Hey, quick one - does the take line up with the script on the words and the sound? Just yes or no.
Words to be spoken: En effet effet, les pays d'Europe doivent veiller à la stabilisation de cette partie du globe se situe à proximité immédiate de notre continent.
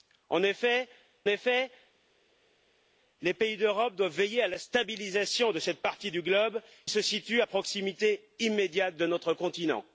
yes